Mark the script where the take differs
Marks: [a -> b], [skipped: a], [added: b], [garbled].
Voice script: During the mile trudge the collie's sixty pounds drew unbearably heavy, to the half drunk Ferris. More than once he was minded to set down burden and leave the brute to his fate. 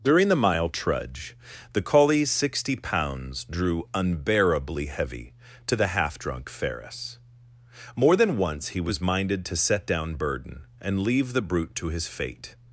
During the mile trudge the collie's sixty pounds drew unbearably heavy, to the half drunk Ferris. More than once he was minded to set down burden and leave the brute to his fate.